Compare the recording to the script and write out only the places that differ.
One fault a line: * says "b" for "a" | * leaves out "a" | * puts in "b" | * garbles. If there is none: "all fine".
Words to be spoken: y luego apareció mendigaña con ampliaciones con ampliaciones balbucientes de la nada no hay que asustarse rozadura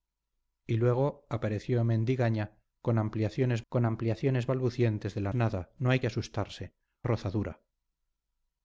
all fine